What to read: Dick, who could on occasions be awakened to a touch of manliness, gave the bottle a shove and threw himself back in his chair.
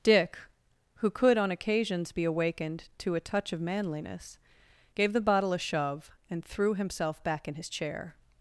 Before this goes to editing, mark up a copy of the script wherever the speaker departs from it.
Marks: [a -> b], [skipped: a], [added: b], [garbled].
Dick, who could on occasions be awakened to a touch of manliness, gave the bottle a shove and threw himself back in his chair.